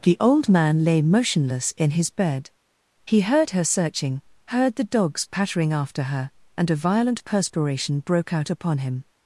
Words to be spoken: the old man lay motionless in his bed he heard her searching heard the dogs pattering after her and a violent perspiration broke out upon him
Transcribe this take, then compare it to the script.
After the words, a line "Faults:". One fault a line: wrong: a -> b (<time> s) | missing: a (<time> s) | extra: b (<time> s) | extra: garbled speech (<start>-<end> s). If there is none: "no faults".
the old man lay motionless in his bed he heard her searching heard the dogs pattering after her and a violent perspiration broke out upon him
Faults:
no faults